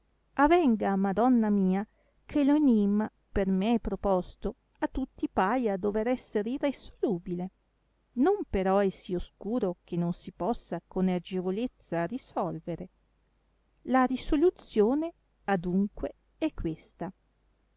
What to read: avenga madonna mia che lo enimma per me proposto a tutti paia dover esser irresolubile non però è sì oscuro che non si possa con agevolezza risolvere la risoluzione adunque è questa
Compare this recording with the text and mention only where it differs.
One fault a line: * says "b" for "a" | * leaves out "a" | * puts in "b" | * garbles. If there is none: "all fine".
all fine